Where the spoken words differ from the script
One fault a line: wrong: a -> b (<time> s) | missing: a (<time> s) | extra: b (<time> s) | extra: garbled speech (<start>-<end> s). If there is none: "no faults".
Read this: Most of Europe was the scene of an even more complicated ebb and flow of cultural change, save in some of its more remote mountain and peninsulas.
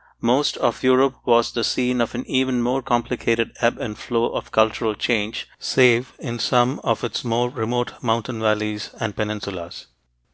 extra: valleys (8.4 s)